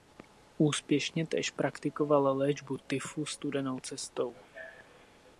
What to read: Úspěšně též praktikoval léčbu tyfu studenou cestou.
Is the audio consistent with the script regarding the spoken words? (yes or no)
yes